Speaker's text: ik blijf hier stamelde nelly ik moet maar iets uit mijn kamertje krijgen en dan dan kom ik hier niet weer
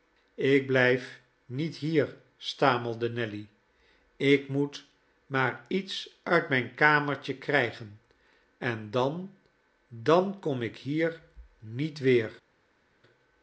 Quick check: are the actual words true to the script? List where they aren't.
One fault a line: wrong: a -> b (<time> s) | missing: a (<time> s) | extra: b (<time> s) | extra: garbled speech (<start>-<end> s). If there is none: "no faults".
extra: niet (1.4 s)